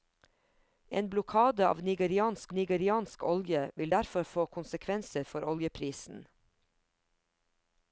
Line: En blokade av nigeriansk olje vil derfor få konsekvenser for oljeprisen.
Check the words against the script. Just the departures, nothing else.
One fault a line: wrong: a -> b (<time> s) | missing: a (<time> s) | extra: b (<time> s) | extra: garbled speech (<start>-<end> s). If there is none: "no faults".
extra: nigeriansk (2.5 s)